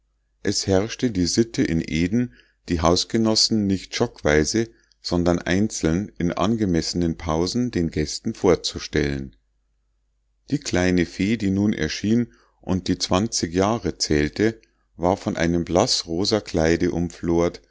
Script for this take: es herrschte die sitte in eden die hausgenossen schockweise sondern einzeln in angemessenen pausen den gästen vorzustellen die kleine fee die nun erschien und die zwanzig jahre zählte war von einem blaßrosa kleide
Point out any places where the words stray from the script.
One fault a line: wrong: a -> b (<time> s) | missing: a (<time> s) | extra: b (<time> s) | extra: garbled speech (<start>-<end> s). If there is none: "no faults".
extra: nicht (3.7 s)